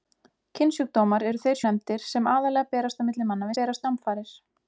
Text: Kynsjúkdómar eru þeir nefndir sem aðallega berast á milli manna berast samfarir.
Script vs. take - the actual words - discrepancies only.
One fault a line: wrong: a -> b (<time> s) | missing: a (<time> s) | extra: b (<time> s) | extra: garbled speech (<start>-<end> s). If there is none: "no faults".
no faults